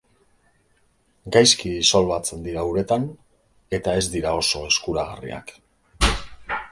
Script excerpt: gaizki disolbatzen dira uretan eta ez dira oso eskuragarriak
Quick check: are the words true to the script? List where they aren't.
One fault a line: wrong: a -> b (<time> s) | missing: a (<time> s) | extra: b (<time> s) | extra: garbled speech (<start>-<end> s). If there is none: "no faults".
no faults